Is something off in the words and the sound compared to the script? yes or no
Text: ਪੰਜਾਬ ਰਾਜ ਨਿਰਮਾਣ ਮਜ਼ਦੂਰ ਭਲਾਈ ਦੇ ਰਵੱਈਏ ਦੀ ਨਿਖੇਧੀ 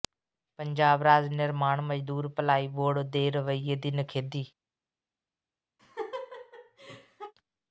yes